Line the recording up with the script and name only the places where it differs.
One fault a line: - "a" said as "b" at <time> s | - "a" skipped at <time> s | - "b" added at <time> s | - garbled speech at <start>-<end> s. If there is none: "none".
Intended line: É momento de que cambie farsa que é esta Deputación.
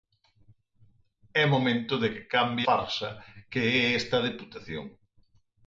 none